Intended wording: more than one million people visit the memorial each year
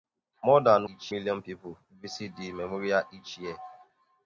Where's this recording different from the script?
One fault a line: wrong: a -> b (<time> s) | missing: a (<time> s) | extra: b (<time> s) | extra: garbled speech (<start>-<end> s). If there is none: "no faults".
wrong: one -> each (0.9 s)